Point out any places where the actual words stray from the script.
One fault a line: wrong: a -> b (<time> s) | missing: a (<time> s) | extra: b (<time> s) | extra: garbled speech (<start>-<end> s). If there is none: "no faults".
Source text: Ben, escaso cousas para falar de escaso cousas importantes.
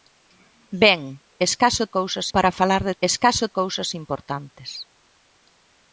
no faults